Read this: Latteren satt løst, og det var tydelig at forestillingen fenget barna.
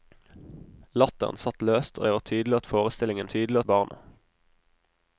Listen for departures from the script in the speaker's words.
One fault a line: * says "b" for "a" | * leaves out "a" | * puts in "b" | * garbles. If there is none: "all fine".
* says "tydelig" for "fenget"